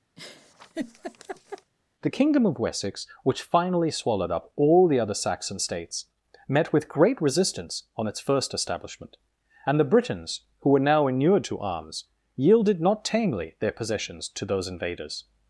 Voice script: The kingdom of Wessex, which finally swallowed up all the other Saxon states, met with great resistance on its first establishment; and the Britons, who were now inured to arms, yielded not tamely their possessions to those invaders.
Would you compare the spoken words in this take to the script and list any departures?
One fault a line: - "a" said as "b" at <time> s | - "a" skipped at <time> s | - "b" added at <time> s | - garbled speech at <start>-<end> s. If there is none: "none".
none